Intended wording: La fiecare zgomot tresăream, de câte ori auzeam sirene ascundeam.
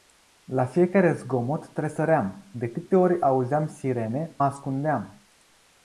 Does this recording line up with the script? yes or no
yes